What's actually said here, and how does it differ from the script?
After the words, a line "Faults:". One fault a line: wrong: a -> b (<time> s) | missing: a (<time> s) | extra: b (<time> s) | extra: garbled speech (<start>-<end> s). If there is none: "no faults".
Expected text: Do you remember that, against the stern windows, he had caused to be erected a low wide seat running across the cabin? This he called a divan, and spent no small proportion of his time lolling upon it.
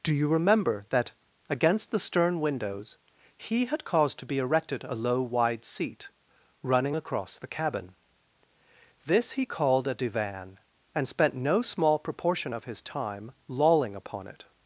Do you remember that, against the stern windows, he had caused to be erected a low wide seat running across the cabin? This he called a divan, and spent no small proportion of his time lolling upon it.
Faults:
no faults